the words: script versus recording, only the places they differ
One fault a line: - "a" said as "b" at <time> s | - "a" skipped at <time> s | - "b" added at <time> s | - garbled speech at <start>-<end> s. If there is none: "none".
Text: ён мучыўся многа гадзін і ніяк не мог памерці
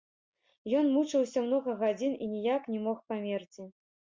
none